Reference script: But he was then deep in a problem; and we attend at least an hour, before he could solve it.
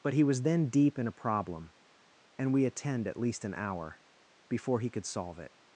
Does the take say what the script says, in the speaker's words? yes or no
yes